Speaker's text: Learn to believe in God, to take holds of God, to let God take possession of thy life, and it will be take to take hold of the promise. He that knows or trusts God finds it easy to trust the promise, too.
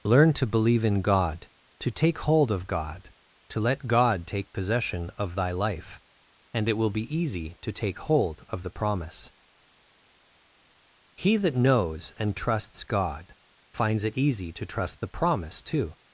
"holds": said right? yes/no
no